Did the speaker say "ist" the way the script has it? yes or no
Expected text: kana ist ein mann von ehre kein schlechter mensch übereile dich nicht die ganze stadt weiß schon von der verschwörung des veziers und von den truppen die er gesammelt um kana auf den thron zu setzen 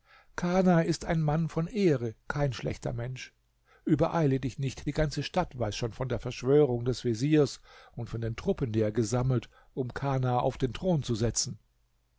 yes